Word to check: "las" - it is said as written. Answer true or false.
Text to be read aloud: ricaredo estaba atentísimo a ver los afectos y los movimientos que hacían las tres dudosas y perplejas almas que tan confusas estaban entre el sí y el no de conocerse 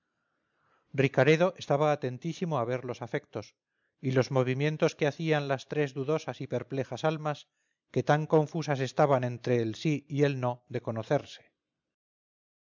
true